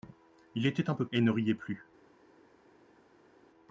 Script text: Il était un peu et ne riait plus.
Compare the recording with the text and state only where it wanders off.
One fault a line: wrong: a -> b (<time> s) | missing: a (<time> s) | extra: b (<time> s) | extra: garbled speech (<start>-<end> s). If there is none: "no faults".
no faults